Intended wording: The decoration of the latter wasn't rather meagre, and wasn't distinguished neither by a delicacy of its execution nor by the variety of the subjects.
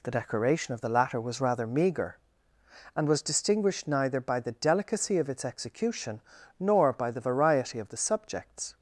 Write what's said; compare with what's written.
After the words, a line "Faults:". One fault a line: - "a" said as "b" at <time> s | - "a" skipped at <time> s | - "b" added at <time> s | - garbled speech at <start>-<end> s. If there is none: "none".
The decoration of the latter was rather meagre, and was distinguished neither by the delicacy of its execution nor by the variety of the subjects.
Faults:
- "wasn't" said as "was" at 1.2 s
- "wasn't" said as "was" at 3.1 s
- "a" said as "the" at 4.4 s